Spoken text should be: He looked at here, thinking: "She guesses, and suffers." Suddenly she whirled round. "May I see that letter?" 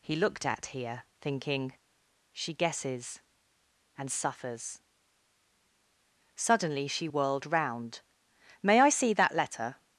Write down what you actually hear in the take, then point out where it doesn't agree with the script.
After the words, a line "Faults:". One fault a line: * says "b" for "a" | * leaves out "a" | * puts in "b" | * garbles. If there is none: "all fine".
He looked at here, thinking: "She guesses, and suffers." Suddenly she whirled round. "May I see that letter?"
Faults:
all fine